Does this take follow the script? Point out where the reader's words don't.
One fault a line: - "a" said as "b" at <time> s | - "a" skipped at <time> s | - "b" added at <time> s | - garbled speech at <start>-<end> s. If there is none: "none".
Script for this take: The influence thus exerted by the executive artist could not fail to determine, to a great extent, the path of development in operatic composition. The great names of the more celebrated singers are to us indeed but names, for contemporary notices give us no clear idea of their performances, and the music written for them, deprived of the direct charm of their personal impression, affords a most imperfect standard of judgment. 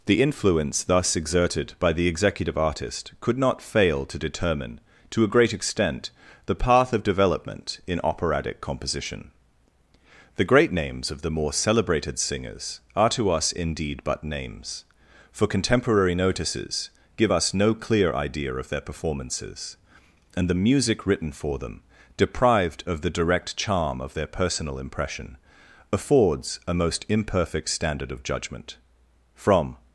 - "From" added at 29.3 s